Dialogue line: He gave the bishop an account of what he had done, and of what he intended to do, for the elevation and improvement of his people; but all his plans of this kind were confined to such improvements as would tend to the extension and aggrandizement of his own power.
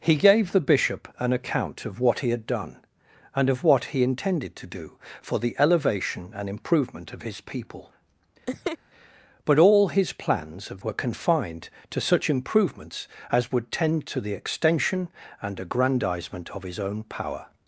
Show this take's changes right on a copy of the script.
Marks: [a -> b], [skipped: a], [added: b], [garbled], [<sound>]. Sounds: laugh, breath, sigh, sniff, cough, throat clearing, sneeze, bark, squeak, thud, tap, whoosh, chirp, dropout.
He gave the bishop an account of what he had done, and of what he intended to do, for the elevation and improvement of his people; [laugh] but all his plans of [skipped: this kind] were confined to such improvements as would tend to the extension and aggrandizement of his own power.